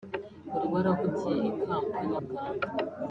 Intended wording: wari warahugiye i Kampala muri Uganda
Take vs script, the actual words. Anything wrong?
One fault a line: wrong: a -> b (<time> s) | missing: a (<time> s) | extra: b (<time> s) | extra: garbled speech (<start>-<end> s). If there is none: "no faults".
missing: muri (2.2 s)